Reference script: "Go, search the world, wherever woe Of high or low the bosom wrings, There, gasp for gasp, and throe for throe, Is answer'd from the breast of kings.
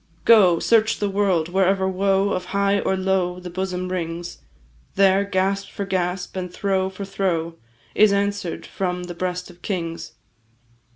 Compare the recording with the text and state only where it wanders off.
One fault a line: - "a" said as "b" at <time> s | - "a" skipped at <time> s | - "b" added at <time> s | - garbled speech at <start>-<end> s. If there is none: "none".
none